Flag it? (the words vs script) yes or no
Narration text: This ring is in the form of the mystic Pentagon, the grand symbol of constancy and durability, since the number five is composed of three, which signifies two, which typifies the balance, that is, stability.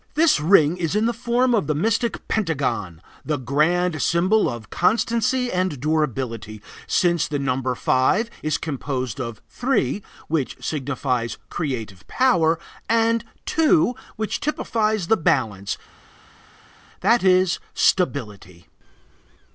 yes